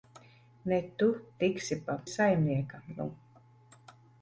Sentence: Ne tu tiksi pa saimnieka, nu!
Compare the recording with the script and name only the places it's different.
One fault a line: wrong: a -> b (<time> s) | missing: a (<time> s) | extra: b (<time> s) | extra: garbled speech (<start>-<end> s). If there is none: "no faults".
no faults